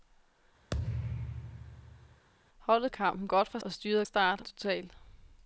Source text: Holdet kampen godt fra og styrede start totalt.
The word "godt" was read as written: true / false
true